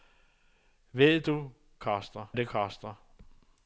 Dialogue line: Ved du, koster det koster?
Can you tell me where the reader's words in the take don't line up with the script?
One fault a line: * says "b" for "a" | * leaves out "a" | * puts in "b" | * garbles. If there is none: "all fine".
all fine